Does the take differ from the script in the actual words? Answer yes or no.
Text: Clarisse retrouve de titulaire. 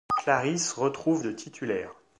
no